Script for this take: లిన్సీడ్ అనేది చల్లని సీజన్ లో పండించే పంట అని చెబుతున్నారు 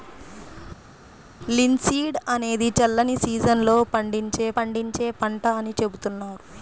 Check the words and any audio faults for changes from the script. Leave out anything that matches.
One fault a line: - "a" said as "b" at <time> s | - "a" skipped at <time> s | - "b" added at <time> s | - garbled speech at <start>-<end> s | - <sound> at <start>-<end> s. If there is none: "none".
- "పండించే" added at 4.6 s